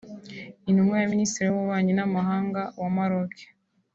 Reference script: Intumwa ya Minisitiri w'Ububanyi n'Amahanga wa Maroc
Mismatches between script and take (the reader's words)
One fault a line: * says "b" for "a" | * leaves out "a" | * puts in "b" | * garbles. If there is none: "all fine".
all fine